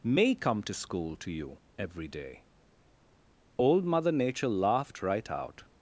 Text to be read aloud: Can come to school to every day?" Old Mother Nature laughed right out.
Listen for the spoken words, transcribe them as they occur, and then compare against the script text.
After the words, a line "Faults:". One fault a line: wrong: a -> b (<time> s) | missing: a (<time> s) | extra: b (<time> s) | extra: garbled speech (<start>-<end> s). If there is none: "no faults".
May come to school to you every day?" Old Mother Nature laughed right out.
Faults:
wrong: Can -> May (0.0 s)
extra: you (1.3 s)